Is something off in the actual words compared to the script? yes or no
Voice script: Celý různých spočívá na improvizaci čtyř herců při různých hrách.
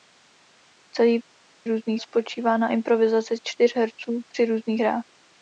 no